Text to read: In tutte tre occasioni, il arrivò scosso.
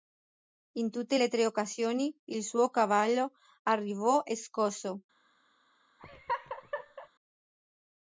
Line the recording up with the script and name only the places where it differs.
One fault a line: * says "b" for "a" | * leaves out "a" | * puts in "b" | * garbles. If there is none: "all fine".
* puts in "le"
* puts in "suo cavallo"